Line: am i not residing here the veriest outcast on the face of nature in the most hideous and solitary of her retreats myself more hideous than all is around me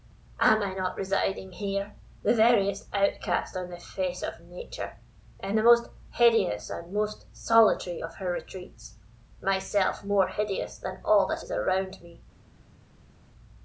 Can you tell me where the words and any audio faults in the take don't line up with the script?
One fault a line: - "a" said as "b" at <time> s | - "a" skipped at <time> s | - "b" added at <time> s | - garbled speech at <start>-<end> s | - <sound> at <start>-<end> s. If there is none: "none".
- "most" added at 6.9 s
- "that" added at 11.3 s